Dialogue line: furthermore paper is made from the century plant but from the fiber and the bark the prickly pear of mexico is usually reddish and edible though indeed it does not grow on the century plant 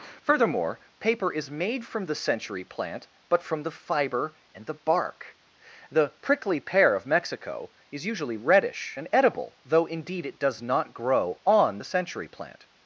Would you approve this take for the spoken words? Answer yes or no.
yes